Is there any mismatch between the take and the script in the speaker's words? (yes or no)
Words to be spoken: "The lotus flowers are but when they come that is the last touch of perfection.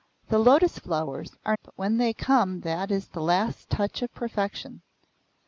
no